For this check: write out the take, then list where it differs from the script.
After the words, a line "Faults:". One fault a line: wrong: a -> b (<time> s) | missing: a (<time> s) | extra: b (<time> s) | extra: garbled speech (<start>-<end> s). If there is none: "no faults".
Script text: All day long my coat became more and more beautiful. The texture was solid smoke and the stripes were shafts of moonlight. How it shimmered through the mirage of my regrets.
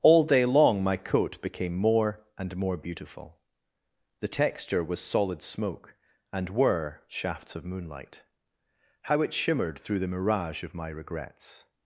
All day long my coat became more and more beautiful. The texture was solid smoke and were shafts of moonlight. How it shimmered through the mirage of my regrets.
Faults:
missing: the stripes (6.5 s)